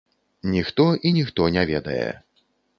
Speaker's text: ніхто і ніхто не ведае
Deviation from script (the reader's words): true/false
false